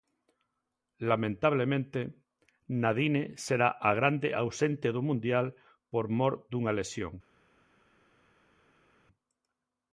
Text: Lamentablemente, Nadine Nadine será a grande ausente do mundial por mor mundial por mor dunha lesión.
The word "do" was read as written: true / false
true